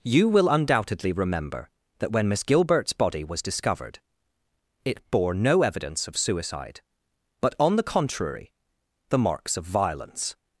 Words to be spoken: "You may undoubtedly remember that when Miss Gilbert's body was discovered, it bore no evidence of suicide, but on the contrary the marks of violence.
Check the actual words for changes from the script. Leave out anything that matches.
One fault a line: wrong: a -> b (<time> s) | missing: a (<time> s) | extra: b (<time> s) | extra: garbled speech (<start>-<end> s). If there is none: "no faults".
wrong: may -> will (0.3 s)